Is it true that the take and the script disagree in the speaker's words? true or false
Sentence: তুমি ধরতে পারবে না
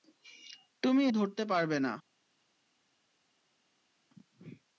false